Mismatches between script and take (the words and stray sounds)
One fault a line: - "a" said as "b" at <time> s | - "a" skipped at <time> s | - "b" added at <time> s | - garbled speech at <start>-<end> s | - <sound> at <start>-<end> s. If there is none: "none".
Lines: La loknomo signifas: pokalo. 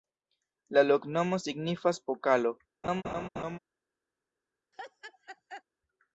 - laugh at 2.8-3.6 s
- laugh at 4.7-5.6 s